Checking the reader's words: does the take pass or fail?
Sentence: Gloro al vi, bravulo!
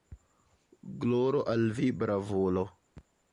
pass